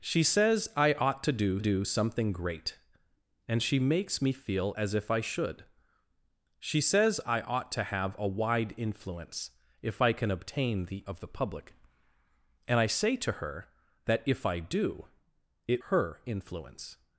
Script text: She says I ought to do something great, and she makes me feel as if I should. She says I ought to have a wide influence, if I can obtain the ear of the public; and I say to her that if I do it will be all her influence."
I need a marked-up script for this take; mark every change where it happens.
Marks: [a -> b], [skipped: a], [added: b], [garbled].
She says I ought to do [added: do] something great, and she makes me feel as if I should. She says I ought to have a wide influence, if I can obtain the [skipped: ear] of the public; and I say to her that if I do it [skipped: will be all] her influence."